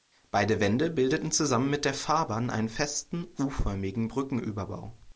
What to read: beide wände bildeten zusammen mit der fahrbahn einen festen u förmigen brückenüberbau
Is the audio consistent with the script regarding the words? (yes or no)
yes